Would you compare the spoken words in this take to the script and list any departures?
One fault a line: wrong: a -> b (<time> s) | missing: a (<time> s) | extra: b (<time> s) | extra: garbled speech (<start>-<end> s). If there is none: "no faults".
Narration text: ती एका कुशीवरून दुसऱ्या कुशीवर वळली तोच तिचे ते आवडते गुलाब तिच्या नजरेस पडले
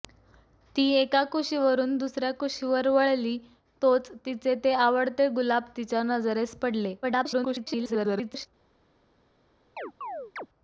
extra: garbled speech (7.0-8.5 s)